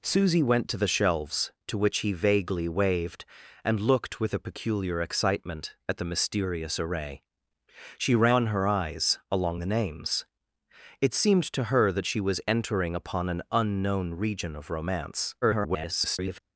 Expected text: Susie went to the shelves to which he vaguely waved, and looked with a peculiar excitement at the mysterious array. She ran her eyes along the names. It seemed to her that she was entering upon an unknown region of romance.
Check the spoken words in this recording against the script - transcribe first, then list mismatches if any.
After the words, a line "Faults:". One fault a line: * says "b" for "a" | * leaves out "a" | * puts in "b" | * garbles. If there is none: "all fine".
Susie went to the shelves to which he vaguely waved, and looked with a peculiar excitement at the mysterious array. She ran her eyes along the names. It seemed to her that she was entering upon an unknown region of romance. [garbled]
Faults:
* garbles